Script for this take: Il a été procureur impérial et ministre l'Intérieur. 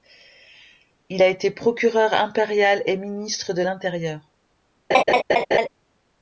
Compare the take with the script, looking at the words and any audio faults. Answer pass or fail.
fail